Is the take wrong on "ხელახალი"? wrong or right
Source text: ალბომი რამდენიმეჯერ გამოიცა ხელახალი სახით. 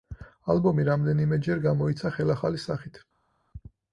right